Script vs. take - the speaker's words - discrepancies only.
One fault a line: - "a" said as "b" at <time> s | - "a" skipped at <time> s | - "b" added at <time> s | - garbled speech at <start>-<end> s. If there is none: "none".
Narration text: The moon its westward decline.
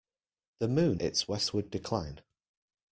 none